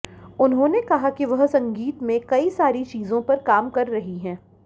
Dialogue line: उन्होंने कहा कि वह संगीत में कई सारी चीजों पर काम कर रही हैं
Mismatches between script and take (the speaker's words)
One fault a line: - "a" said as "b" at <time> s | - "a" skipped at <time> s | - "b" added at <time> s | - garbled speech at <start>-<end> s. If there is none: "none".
none